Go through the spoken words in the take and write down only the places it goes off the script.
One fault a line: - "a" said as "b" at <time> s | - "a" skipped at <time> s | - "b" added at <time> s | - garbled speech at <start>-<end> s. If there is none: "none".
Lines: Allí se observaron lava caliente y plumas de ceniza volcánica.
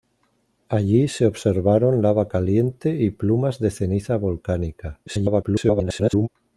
- garbled speech at 5.1-6.3 s